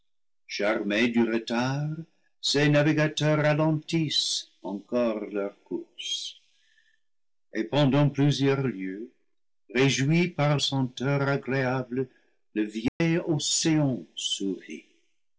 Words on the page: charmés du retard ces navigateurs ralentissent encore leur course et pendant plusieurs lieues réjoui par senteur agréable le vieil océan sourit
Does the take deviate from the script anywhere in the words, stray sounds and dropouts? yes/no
yes